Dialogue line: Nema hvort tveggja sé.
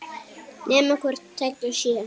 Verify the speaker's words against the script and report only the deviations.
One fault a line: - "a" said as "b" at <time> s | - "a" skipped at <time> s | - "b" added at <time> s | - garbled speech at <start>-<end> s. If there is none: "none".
none